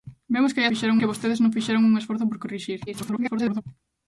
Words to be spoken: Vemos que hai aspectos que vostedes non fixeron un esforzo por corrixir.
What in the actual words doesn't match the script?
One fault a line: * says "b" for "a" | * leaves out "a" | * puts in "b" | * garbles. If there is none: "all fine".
* says "fixeron" for "aspectos"
* garbles